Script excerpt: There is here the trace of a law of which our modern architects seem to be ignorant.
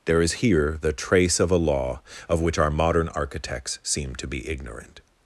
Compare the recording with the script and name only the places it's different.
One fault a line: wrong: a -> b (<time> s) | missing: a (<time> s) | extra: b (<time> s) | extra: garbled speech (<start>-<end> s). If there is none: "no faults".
no faults